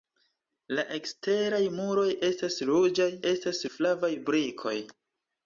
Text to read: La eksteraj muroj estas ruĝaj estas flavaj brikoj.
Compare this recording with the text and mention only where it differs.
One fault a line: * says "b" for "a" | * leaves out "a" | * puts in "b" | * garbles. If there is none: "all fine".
all fine